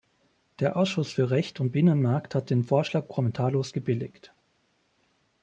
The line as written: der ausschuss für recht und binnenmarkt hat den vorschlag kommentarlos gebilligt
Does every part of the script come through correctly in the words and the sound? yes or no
yes